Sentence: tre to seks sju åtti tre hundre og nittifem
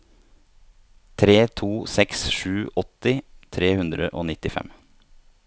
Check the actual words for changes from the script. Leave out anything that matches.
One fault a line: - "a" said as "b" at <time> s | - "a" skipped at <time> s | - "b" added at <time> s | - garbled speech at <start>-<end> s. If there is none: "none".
none